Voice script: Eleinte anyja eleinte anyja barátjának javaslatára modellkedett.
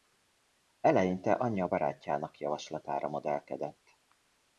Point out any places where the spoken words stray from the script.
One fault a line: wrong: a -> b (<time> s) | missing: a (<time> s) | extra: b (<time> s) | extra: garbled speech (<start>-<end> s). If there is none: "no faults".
missing: eleinte anyja (1.7 s)